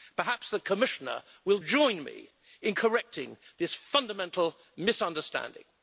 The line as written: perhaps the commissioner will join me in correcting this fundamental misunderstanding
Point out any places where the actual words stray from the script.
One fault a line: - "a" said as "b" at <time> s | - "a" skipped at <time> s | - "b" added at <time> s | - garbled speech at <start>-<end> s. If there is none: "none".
none